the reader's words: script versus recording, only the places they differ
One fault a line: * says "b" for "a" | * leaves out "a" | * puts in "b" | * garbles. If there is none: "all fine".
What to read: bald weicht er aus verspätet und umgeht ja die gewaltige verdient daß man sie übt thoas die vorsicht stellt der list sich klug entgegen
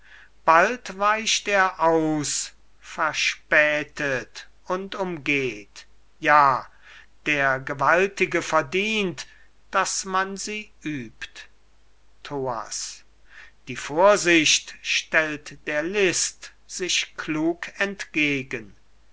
* says "der" for "die"